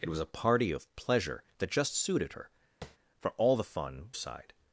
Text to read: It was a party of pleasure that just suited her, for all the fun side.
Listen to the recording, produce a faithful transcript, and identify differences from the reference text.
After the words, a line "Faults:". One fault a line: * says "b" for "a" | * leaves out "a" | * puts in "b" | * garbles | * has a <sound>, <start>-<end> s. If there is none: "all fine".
It was a party of pleasure that just suited her, for all the fun side.
Faults:
* has a tap, 2.8-3.0 s